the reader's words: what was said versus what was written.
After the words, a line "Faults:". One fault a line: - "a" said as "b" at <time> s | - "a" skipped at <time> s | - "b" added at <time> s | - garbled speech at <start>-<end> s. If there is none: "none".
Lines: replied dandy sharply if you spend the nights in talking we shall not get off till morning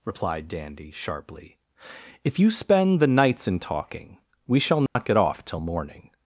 replied dandy sharply if you spend the nights in talking we shall not get off till morning
Faults:
none